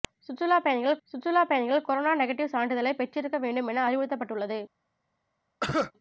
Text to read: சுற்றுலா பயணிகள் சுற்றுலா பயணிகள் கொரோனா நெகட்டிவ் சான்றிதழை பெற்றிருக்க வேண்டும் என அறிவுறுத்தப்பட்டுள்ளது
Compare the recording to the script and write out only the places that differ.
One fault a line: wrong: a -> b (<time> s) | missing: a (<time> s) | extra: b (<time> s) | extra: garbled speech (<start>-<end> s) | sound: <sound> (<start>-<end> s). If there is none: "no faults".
sound: cough (5.6-5.9 s)